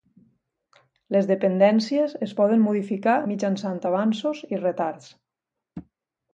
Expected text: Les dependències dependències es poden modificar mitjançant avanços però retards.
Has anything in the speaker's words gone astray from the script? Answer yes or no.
yes